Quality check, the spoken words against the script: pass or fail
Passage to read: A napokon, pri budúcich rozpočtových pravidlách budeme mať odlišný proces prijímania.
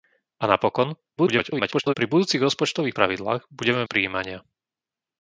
fail